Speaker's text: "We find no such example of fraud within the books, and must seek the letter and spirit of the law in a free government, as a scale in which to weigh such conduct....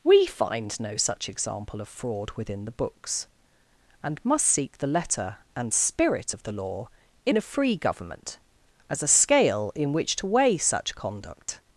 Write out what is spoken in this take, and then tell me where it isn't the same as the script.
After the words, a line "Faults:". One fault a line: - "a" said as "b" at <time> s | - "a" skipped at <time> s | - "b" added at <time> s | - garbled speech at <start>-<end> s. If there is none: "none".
"We find no such example of fraud within the books, and must seek the letter and spirit of the law in a free government, as a scale in which to weigh such conduct....
Faults:
none